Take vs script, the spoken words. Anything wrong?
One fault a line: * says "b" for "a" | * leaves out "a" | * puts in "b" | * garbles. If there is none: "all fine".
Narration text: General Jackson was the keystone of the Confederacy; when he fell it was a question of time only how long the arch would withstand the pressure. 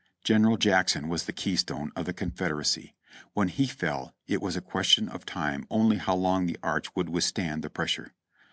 all fine